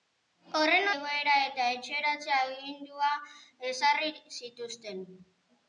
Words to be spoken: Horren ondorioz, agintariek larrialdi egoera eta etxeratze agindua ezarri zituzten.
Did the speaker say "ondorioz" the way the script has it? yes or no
no